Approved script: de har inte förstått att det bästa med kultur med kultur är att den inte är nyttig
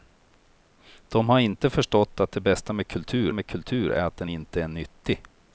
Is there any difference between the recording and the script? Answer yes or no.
no